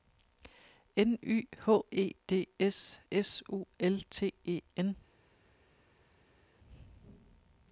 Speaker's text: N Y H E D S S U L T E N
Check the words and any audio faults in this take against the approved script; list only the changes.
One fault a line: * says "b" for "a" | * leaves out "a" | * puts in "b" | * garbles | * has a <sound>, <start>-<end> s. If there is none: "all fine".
all fine